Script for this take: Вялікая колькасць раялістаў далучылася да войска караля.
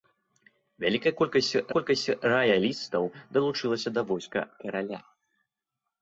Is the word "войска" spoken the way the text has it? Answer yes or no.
yes